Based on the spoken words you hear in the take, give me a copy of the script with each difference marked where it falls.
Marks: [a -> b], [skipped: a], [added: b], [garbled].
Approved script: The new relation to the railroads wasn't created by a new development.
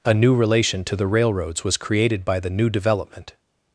[The -> A] new relation to the railroads [wasn't -> was] created by [a -> the] new development.